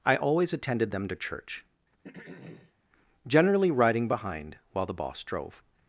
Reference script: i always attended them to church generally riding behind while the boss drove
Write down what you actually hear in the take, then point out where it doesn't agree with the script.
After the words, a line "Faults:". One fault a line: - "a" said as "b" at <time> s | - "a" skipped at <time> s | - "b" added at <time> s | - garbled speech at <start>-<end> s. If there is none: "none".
i always attended them to church generally riding behind while the boss drove
Faults:
none